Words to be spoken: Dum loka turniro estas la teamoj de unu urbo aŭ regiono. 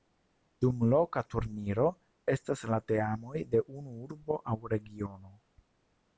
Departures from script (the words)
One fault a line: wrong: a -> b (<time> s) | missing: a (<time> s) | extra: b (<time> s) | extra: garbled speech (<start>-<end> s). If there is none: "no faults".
no faults